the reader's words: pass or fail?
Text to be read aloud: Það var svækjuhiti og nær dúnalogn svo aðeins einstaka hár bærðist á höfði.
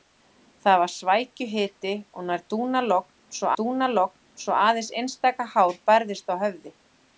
fail